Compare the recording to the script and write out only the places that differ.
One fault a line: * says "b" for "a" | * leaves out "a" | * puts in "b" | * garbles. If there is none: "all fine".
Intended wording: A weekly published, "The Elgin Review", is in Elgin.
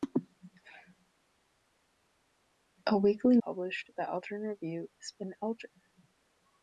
all fine